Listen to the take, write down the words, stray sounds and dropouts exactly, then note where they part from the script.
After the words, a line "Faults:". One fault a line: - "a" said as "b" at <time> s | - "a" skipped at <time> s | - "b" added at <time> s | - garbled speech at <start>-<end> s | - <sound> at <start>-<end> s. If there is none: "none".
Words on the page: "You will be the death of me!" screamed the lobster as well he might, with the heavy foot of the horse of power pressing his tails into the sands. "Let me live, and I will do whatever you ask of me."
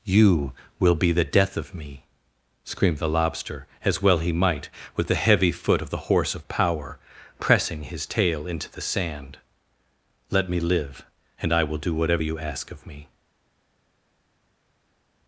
"You will be the death of me!" screamed the lobster as well he might, with the heavy foot of the horse of power pressing his tail into the sand. "Let me live, and I will do whatever you ask of me."
Faults:
- "tails" said as "tail" at 8.1 s
- "sands" said as "sand" at 8.8 s